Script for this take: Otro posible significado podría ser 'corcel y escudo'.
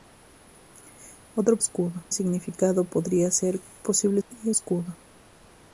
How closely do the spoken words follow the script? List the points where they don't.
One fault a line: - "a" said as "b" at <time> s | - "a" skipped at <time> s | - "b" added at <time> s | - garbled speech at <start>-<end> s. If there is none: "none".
- "posible" said as "escudo" at 1.6 s
- "corcel" said as "posible" at 3.8 s